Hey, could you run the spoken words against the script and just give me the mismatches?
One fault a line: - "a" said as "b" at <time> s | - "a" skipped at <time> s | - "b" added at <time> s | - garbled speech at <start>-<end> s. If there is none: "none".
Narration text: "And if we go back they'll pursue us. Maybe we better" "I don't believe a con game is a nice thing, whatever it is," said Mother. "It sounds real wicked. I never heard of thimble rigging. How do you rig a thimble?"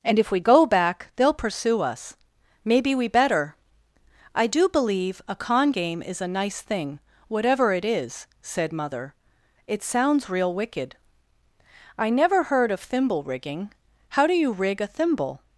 - "don't" said as "do" at 4.5 s